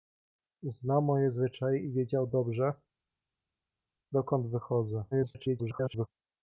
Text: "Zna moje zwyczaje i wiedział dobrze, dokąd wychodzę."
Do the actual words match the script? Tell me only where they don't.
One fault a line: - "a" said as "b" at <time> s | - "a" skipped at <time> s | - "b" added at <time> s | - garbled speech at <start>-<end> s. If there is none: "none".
- garbled speech at 5.1-6.1 s